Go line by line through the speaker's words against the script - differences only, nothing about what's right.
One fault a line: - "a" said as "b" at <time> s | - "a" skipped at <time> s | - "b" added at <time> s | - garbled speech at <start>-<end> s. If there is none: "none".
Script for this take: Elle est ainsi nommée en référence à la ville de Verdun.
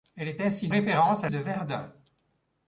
- "nommée en" skipped at 0.7 s
- "la ville" skipped at 1.3 s